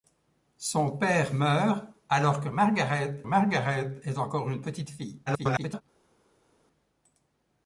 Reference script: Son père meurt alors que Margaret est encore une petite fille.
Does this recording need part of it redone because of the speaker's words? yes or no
yes